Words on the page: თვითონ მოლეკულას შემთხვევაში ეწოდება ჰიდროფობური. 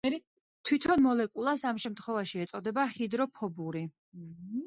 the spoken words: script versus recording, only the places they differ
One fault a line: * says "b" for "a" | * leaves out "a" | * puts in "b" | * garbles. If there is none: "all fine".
* puts in "ამ"